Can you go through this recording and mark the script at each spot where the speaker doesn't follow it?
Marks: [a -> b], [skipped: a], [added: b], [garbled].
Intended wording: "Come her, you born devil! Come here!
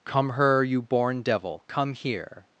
"Come her, you born devil! Come here!